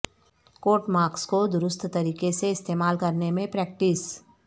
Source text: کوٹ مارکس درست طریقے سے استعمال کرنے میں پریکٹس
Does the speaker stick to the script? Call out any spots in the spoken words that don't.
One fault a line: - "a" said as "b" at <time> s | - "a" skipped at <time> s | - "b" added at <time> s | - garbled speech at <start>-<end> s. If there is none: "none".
- "کو" added at 1.3 s